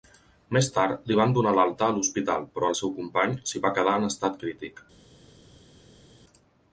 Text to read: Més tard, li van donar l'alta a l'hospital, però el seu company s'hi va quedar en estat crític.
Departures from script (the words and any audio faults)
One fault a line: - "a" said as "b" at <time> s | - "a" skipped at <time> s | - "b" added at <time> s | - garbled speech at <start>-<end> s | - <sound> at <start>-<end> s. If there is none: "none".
none